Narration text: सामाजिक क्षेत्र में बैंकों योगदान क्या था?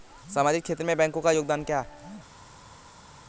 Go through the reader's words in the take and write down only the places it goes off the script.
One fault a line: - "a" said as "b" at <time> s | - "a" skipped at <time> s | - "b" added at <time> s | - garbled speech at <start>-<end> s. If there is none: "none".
- "का" added at 1.2 s
- "था" said as "है" at 1.8 s